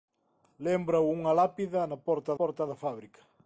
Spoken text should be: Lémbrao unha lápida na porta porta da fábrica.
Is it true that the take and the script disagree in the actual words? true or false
false